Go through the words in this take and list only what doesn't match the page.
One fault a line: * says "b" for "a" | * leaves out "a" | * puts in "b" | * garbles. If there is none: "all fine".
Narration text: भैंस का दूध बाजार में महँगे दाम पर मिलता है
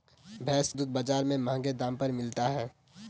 * leaves out "का"